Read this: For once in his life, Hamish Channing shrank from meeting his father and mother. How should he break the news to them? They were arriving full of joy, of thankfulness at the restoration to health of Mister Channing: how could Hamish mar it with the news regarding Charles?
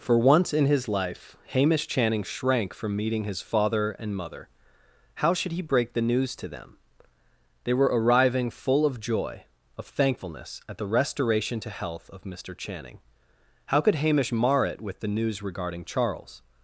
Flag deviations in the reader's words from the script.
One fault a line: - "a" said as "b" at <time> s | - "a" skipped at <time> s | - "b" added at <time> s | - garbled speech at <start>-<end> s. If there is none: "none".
none